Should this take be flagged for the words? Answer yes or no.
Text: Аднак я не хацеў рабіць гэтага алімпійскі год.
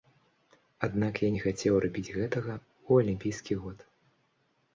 yes